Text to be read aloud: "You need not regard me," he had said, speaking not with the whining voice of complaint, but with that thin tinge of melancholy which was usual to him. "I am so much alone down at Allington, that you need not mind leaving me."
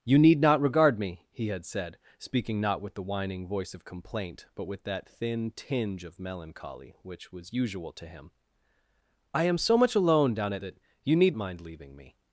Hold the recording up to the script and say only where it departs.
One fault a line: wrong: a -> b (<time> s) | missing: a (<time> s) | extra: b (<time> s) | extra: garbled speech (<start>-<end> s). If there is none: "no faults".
missing: Allington (10.6 s)
missing: not (11.4 s)